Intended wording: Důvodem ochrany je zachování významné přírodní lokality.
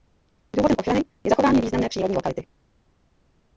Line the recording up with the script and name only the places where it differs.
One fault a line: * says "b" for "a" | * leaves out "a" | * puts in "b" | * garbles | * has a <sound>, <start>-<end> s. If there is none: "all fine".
all fine